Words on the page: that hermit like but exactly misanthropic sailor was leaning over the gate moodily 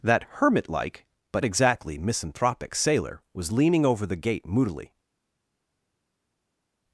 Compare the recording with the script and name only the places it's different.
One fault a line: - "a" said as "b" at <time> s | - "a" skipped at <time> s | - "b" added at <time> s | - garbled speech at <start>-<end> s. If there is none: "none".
none